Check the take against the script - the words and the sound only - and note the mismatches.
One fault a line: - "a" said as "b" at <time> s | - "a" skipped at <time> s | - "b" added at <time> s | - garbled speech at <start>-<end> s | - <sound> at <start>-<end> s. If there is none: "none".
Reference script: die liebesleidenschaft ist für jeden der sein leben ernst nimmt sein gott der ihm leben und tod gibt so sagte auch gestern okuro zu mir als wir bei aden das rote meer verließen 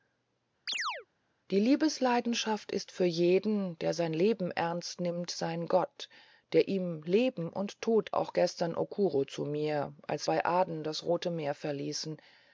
- chirp at 0.7-1.1 s
- "gibt so sagte" skipped at 8.1 s
- "wir" skipped at 10.3 s